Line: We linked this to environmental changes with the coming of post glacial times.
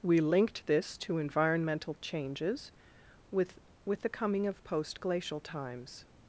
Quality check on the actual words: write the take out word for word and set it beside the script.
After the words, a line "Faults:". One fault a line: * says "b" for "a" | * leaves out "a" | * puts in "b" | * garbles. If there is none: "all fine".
We linked this to environmental changes with with the coming of post glacial times.
Faults:
* puts in "with"